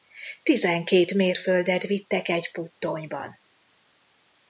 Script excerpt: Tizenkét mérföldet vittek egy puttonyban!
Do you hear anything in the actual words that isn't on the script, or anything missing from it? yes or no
no